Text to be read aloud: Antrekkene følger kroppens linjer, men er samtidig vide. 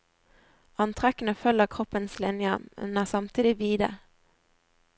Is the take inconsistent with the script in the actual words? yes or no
no